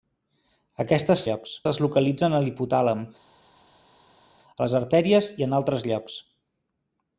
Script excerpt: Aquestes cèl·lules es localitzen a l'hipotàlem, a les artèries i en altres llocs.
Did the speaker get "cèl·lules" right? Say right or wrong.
wrong